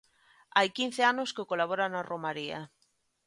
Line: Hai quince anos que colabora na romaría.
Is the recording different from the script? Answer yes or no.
no